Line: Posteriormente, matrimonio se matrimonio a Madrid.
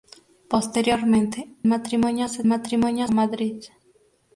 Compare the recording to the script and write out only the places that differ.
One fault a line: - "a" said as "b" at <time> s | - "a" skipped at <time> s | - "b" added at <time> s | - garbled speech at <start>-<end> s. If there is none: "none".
none